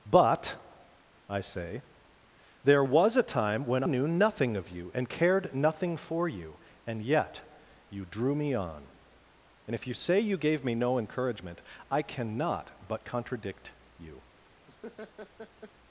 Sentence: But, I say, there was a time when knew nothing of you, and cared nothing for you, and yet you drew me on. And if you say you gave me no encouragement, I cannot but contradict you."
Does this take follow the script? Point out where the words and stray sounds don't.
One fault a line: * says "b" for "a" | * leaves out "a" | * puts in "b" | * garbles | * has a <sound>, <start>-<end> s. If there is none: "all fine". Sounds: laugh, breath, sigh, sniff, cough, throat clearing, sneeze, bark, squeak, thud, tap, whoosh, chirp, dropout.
* has a laugh, 14.7-15.7 s